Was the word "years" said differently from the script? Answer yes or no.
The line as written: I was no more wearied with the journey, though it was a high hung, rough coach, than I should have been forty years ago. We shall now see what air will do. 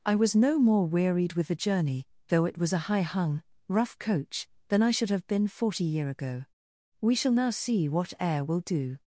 yes